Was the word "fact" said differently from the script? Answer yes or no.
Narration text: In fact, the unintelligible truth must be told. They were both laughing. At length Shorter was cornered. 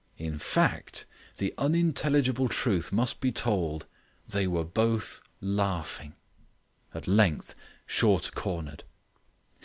no